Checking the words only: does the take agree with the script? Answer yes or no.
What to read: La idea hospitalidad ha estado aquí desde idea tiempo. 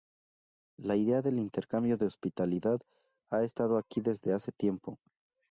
no